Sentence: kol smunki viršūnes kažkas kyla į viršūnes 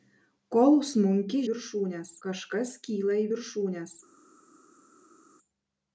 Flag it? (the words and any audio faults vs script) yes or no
no